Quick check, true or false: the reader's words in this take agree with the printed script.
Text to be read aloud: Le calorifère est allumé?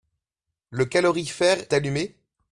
false